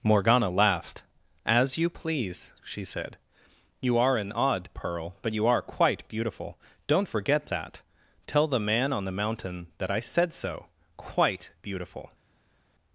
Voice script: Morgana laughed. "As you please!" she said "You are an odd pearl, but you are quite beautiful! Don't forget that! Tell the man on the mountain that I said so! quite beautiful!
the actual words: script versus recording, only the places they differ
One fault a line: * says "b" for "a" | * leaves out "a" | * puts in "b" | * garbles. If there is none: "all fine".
all fine